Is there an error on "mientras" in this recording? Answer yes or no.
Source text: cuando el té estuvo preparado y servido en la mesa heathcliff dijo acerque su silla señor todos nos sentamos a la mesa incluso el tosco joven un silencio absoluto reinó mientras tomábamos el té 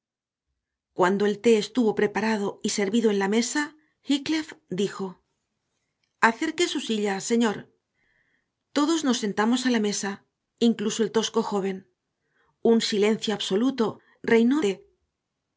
yes